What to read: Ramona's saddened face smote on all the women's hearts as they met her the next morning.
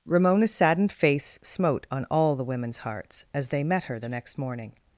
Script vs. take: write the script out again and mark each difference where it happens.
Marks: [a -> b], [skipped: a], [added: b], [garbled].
Ramona's saddened face smote on all the women's hearts as they met her the next morning.